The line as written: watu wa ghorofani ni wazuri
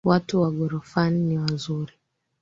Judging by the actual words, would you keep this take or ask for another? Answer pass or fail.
pass